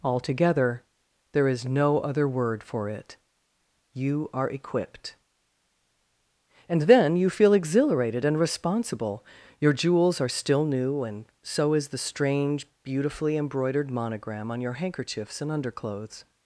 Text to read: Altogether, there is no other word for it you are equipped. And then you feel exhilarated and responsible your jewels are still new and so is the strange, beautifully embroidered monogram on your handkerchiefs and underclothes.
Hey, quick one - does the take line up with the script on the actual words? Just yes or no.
yes